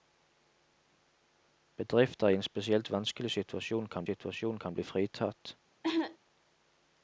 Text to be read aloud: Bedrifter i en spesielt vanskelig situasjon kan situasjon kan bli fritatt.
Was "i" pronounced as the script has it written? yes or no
yes